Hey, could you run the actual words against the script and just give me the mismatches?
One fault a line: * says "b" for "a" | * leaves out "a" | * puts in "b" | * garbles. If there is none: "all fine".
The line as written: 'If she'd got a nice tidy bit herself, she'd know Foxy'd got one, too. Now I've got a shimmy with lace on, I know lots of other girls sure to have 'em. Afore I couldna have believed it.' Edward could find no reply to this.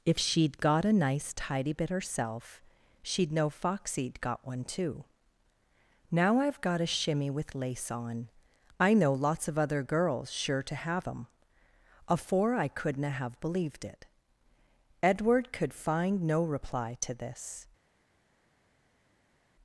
all fine